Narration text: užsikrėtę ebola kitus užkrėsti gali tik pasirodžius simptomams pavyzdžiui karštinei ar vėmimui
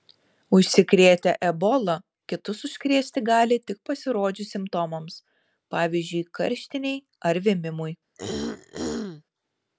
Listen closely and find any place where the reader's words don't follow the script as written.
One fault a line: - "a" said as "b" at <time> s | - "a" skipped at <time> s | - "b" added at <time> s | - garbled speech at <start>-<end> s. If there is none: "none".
none